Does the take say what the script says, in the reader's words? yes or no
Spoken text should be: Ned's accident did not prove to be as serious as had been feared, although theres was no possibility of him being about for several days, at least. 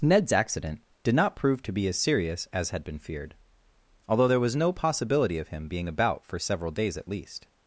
no